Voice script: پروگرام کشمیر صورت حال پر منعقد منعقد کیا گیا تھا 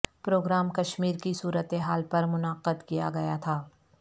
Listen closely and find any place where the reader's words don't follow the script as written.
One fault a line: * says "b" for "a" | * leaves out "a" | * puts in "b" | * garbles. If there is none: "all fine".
* puts in "کی"
* leaves out "منعقد"